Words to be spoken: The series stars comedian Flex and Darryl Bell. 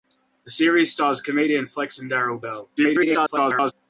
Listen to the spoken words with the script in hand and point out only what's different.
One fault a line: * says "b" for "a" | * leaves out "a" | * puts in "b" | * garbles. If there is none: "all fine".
* garbles